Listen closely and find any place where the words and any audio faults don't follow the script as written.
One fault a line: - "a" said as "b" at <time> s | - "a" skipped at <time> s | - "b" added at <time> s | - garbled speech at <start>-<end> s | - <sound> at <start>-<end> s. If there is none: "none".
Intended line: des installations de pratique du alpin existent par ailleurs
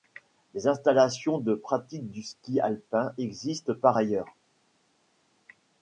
- "ski" added at 2.2 s